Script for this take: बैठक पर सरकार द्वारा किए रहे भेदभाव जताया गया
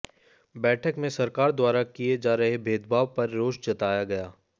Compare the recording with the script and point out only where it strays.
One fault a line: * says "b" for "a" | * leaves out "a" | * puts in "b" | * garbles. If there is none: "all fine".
* says "में" for "पर"
* puts in "जा"
* puts in "पर रोष"